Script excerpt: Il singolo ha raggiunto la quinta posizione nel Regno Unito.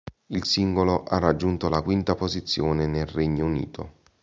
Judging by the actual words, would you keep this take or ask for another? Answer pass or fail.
pass